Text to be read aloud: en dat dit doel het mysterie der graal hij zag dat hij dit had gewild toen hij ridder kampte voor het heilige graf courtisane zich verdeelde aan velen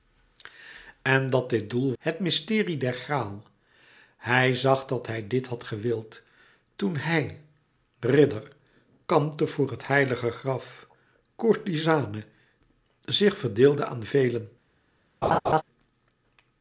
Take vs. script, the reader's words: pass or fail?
pass